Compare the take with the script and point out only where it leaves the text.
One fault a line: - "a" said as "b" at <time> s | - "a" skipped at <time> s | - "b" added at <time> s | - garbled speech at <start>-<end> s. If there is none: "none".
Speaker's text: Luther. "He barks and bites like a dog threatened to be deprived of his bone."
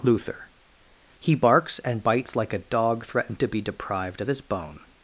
none